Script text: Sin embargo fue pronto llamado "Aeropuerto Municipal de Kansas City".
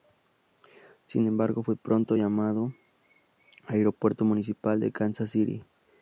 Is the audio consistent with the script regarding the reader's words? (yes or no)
yes